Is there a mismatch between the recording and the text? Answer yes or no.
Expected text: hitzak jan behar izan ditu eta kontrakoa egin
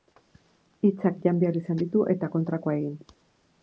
no